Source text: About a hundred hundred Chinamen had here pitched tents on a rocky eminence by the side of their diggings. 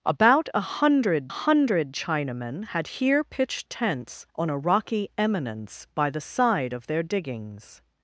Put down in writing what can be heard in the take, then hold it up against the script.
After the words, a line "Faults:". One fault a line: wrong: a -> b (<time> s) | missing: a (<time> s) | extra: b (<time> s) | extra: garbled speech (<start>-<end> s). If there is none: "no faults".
About a hundred hundred Chinamen had here pitched tents on a rocky eminence by the side of their diggings.
Faults:
no faults